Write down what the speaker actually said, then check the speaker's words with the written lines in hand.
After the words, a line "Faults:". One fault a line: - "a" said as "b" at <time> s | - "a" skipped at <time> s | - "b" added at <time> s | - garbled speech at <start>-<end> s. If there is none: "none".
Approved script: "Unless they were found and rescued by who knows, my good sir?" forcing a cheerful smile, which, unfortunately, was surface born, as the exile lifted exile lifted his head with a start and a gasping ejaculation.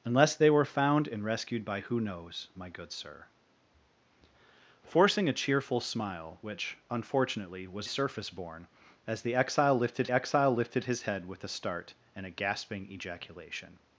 "Unless they were found and rescued by who knows, my good sir?" forcing a cheerful smile, which, unfortunately, was surface born, as the exile lifted exile lifted his head with a start and a gasping ejaculation.
Faults:
none